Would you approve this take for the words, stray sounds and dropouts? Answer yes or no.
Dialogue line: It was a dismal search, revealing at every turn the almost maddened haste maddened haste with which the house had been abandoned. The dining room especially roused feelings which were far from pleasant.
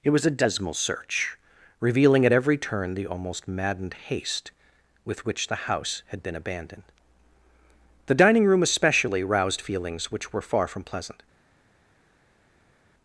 no